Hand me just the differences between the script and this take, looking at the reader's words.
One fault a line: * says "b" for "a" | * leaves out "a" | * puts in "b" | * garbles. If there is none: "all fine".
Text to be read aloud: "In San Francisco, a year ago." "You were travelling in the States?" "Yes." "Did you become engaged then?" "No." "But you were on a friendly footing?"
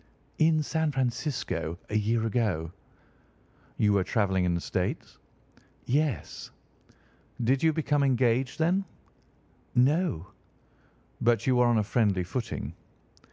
all fine